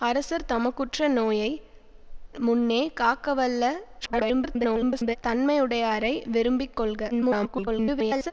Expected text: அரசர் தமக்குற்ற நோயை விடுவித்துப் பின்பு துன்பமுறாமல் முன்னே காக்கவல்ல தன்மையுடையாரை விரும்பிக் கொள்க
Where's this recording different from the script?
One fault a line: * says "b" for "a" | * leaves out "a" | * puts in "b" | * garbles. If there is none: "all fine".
* leaves out "விடுவித்துப் பின்பு துன்பமுறாமல்"
* garbles
* garbles